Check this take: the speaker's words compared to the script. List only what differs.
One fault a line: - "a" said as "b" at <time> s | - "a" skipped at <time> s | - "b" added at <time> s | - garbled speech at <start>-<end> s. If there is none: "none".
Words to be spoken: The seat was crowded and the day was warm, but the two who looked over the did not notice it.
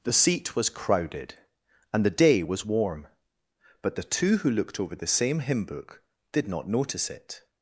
- "same hymn book" added at 5.1 s